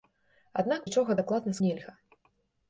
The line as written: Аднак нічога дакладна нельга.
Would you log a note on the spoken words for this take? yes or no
no